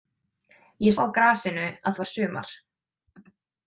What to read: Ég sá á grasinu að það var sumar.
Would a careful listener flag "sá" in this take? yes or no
yes